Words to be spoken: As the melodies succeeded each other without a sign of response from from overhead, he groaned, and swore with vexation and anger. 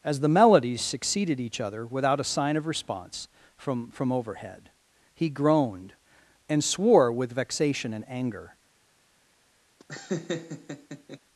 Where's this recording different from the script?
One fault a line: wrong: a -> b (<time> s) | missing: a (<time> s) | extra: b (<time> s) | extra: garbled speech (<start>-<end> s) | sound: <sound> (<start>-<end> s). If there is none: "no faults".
sound: laugh (9.8-11.2 s)